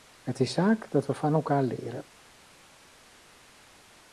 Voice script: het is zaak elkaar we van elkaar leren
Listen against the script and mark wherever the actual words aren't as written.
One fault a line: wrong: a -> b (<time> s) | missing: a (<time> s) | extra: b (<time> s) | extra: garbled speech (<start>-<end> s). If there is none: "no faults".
wrong: elkaar -> dat (0.9 s)